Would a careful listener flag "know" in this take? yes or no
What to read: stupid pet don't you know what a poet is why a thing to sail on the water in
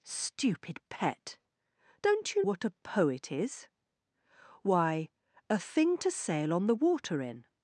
yes